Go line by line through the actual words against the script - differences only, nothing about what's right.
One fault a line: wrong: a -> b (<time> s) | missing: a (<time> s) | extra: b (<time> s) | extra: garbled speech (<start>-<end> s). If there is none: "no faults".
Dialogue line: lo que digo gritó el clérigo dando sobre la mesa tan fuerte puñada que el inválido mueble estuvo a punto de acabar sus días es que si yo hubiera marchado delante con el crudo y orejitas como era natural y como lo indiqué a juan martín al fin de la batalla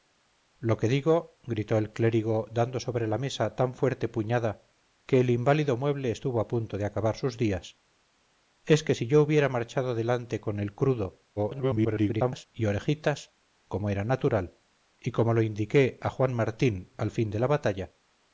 extra: garbled speech (11.4-12.5 s)